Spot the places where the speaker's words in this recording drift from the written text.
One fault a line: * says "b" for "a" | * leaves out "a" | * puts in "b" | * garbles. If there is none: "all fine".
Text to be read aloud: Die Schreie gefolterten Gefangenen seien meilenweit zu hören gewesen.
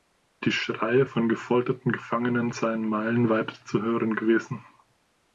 * puts in "von"